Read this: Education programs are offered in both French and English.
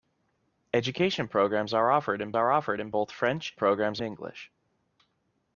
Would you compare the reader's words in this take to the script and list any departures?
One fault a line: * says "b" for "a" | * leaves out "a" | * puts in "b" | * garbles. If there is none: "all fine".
* puts in "are offered in"
* says "programs" for "and"